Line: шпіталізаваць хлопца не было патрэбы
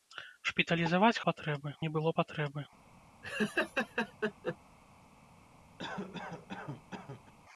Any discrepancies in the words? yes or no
yes